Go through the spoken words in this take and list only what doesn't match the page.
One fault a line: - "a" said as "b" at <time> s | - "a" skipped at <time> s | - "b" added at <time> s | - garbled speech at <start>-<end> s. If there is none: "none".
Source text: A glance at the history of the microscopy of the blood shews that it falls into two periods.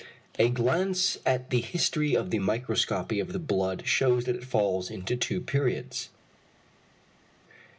none